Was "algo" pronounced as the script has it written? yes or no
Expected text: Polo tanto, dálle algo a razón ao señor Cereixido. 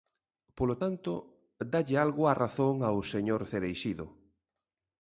yes